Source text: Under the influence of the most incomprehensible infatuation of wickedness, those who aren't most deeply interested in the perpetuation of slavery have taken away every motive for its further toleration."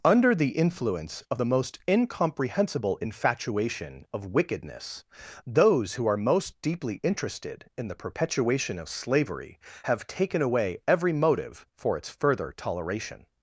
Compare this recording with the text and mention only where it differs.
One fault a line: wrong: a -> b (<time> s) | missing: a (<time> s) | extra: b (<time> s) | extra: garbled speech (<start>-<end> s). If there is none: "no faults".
wrong: aren't -> are (6.0 s)